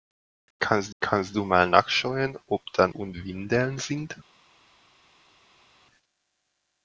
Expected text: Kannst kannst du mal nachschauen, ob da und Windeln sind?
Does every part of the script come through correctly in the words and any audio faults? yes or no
yes